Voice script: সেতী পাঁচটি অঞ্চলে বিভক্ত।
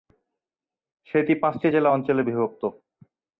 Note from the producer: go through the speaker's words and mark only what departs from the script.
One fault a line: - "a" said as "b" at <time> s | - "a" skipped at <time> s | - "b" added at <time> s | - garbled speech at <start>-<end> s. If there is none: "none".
- "জেলা" added at 1.7 s